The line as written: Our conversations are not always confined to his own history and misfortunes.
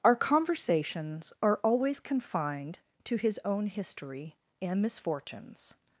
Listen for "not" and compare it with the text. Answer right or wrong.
wrong